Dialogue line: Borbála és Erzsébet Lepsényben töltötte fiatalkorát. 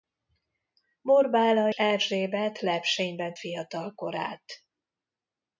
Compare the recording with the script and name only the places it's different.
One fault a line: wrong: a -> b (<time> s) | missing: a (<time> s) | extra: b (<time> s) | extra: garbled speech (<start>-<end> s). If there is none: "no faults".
missing: és (1.7 s)
missing: töltötte (3.4 s)